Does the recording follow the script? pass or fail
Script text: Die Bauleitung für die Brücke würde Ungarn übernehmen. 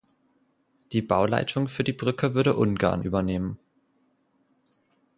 pass